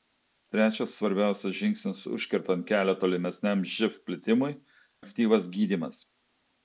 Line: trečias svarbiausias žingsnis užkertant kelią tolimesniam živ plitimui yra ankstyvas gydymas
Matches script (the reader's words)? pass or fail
fail